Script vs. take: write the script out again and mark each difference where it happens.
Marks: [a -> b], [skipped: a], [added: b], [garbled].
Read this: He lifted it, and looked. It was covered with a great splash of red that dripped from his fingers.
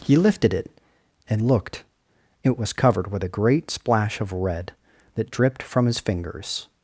He lifted it, and looked. It was covered with a great splash of red that dripped from his fingers.